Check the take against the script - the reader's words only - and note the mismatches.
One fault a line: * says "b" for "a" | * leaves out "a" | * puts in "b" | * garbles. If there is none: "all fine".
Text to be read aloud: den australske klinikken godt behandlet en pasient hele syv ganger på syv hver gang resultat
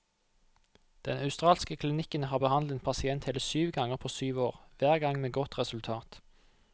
* says "har" for "godt"
* puts in "år"
* puts in "med godt"